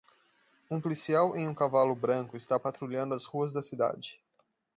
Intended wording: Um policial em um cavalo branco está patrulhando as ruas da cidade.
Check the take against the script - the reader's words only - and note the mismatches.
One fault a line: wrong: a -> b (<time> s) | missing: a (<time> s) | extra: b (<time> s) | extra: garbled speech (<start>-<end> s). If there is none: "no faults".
no faults